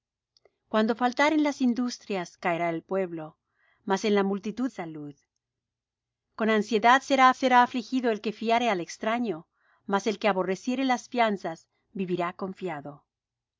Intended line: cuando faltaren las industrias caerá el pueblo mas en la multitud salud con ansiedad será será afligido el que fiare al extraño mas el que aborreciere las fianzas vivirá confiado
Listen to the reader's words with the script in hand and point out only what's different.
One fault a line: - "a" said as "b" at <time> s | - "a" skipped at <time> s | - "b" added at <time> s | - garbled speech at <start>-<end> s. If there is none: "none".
none